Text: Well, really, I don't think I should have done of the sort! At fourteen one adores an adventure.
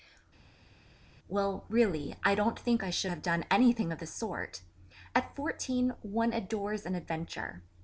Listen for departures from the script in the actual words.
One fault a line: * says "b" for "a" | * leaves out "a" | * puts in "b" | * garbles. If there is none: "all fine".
* puts in "anything"